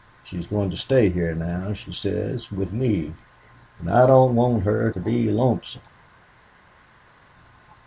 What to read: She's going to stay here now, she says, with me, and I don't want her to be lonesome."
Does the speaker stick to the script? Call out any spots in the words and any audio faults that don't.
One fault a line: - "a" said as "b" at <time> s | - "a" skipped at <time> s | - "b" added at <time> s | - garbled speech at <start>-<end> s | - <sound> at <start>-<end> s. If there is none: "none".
none